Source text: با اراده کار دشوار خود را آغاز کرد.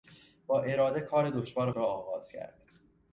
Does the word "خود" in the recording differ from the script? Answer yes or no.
yes